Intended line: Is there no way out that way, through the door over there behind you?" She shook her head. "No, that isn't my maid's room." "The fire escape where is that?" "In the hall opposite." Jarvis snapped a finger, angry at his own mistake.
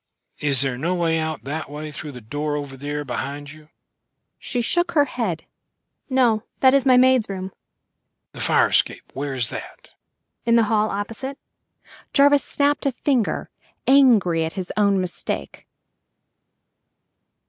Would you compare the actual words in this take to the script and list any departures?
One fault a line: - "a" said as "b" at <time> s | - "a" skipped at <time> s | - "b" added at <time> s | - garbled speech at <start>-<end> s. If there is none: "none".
- "isn't" said as "is" at 6.7 s